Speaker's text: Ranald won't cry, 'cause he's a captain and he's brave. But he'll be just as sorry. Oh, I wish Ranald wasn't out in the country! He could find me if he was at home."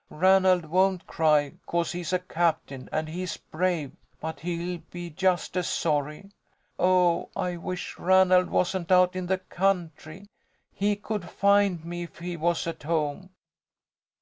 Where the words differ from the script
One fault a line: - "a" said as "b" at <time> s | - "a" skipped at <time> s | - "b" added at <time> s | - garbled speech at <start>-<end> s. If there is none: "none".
none